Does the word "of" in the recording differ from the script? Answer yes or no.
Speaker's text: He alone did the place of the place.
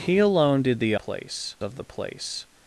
no